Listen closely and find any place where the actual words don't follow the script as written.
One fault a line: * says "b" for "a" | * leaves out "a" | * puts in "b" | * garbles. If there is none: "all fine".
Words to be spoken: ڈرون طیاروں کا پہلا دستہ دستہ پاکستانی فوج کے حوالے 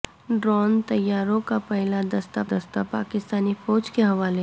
all fine